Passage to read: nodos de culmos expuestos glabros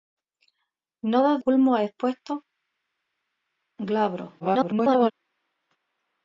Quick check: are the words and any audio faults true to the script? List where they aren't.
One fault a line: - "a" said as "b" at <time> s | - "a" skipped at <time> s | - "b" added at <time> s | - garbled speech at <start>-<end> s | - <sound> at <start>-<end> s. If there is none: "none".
- "de" skipped at 1.4 s
- garbled speech at 4.4-5.1 s